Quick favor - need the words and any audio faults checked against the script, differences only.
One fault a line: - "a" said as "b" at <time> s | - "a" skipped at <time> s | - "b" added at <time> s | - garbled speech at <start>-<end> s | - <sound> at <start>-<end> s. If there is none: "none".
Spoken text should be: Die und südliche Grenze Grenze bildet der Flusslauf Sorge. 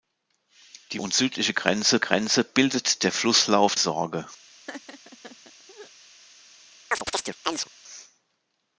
- laugh at 4.7-5.9 s
- chirp at 6.9-7.7 s